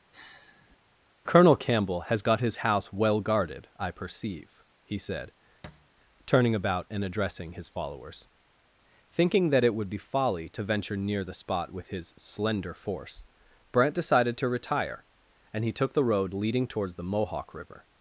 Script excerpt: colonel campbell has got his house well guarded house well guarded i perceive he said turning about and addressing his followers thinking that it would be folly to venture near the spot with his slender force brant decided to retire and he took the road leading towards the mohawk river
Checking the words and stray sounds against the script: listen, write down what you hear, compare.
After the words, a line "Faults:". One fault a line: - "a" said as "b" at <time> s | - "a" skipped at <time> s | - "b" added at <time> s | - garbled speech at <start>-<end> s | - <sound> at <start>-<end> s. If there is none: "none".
colonel campbell has got his house well guarded i perceive he said turning about and addressing his followers thinking that it would be folly to venture near the spot with his slender force brant decided to retire and he took the road leading towards the mohawk river
Faults:
- sigh at 0.1-0.8 s
- "house well guarded" skipped at 3.7 s
- thud at 5.6-5.9 s